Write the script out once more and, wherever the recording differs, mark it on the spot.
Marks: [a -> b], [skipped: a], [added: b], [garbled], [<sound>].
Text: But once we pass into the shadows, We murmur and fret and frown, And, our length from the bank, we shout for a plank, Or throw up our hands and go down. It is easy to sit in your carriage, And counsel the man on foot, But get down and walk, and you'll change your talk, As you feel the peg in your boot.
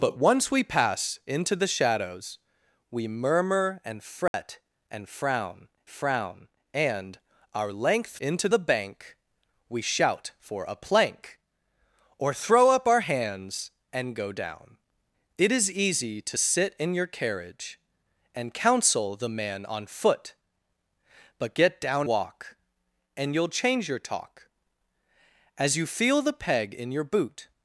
But once we pass into the shadows, We murmur and fret [dropout] and frown, [added: frown] And, our length [from -> into] the bank, we shout for a plank, Or throw up our hands and go down. It is easy to sit in your carriage, And counsel the man on foot, But get down [skipped: and] walk, and you'll change your talk, As you feel the peg in your boot.